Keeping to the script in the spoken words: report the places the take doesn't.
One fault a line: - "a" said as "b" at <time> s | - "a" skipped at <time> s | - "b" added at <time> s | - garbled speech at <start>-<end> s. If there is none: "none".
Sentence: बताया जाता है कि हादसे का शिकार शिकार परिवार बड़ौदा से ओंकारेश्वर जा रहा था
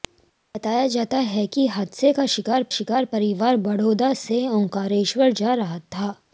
none